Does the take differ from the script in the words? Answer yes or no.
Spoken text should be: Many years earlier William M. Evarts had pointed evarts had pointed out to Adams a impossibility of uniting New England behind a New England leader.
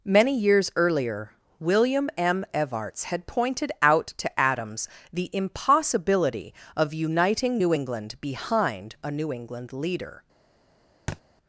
yes